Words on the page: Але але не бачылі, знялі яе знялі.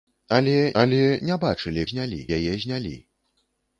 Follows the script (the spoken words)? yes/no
yes